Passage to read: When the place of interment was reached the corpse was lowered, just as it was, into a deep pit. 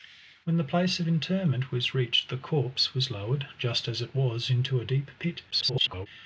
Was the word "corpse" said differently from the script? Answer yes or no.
no